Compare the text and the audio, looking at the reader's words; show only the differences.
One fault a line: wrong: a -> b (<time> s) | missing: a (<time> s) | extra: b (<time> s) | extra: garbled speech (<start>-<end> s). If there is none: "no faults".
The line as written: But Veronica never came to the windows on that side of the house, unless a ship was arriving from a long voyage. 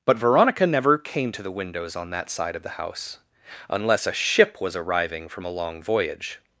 no faults